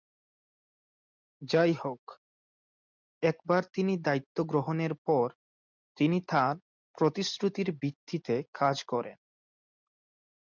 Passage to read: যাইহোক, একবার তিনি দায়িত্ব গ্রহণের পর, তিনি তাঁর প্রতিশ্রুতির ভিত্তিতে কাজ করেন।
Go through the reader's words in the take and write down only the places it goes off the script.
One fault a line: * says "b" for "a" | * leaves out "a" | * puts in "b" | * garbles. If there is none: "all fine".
all fine